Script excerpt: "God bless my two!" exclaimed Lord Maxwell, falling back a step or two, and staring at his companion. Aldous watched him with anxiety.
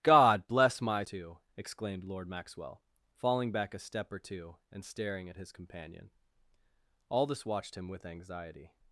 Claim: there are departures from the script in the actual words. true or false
false